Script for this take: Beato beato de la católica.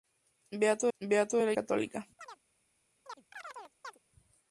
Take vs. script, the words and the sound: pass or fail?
fail